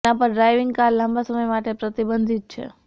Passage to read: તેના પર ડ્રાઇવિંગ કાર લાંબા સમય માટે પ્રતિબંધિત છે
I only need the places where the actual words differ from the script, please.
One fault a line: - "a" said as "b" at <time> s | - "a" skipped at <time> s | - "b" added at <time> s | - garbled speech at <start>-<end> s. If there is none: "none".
none